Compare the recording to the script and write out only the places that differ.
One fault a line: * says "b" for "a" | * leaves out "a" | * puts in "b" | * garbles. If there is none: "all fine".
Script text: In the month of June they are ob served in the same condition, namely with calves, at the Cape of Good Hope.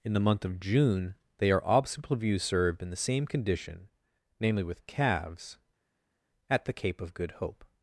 * says "obstacle view" for "ob"